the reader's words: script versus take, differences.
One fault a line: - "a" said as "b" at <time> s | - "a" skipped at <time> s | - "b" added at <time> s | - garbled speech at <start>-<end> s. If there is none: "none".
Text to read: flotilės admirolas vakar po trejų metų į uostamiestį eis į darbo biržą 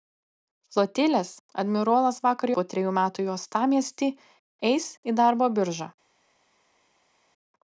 none